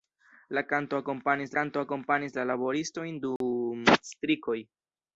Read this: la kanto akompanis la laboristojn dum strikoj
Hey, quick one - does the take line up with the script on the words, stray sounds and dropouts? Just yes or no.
no